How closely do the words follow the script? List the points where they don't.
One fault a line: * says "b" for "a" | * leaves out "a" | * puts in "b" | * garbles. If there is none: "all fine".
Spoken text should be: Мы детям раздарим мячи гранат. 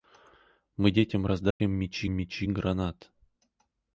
* puts in "мячи"